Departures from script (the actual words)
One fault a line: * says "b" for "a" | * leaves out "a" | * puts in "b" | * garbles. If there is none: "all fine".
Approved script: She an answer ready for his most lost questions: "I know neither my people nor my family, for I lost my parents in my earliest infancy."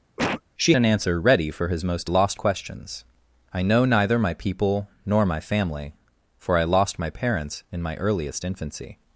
all fine